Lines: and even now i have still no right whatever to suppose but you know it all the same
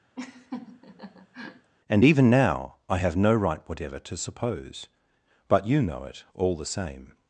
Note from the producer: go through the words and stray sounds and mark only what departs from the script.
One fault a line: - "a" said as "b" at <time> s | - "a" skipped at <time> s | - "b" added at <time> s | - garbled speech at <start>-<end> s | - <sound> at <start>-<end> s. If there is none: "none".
- laugh at 0.2-1.7 s
- "still" skipped at 3.2 s